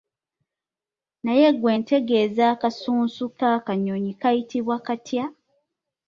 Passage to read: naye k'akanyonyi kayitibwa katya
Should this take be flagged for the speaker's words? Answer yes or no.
yes